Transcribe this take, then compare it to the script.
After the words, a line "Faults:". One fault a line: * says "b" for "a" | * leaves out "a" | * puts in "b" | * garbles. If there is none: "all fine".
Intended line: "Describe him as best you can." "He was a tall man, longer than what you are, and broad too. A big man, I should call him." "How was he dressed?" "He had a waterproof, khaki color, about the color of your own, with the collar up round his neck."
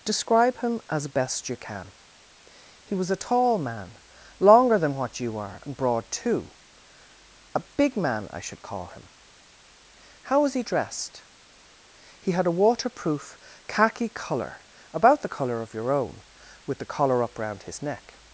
"Describe him as best you can." "He was a tall man, longer than what you are, and broad too. A big man, I should call him." "How was he dressed?" "He had a waterproof, khaki color, about the color of your own, with the collar up round his neck."
Faults:
all fine